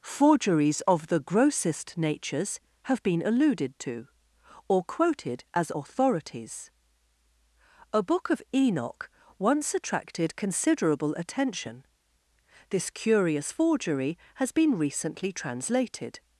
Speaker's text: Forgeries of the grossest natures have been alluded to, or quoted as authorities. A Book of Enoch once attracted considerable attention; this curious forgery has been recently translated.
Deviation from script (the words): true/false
false